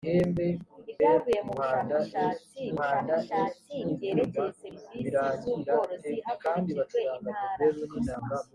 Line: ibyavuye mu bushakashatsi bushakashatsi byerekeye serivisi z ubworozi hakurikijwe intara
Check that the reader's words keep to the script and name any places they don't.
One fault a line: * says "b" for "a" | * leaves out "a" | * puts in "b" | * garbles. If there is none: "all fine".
all fine